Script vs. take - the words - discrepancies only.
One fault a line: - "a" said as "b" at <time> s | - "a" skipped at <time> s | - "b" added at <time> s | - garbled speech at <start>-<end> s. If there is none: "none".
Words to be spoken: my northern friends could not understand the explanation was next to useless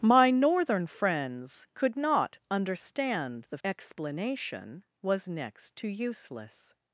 none